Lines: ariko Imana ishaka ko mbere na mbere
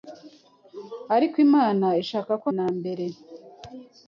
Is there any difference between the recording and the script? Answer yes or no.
yes